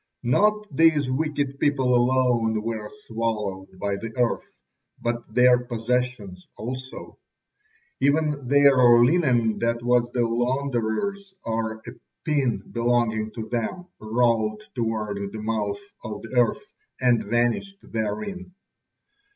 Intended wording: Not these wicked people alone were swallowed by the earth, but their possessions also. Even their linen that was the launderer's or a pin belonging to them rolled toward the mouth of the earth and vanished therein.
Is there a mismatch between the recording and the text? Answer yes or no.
no